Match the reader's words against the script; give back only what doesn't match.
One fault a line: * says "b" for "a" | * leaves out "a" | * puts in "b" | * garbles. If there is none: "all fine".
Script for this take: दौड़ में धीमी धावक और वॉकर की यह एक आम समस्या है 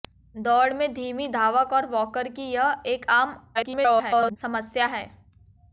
* garbles